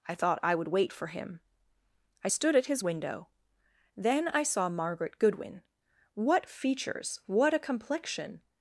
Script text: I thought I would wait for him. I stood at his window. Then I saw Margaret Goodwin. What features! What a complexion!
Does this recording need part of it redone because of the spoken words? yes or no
no